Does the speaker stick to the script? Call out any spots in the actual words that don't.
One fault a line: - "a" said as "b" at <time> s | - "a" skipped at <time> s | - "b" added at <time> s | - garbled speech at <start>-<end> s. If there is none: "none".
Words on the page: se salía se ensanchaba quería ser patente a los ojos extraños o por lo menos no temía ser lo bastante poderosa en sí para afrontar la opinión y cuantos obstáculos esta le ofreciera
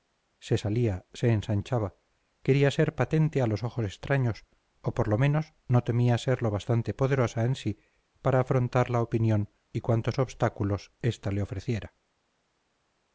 none